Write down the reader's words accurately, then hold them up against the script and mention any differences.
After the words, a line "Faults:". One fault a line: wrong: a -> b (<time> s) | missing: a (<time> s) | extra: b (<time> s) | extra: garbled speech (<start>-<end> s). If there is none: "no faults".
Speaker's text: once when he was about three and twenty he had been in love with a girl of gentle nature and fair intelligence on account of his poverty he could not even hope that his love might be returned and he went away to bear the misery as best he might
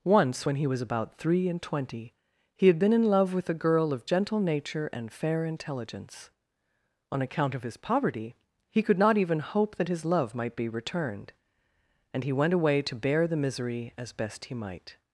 once when he was about three and twenty he had been in love with a girl of gentle nature and fair intelligence on account of his poverty he could not even hope that his love might be returned and he went away to bear the misery as best he might
Faults:
no faults